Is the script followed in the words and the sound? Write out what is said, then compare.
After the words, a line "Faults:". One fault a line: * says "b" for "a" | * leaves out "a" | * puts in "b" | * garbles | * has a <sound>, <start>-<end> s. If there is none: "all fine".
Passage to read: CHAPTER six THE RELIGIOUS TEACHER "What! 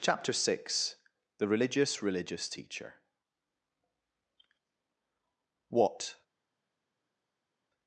CHAPTER six THE RELIGIOUS RELIGIOUS TEACHER "What!
Faults:
* puts in "RELIGIOUS"